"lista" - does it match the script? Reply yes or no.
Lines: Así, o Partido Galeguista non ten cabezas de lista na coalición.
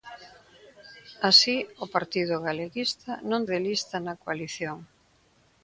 yes